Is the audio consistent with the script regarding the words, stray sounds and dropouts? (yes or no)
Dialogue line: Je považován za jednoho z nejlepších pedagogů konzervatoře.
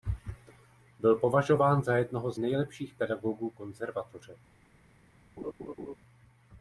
no